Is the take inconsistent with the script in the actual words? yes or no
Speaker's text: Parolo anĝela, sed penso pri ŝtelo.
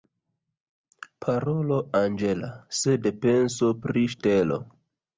no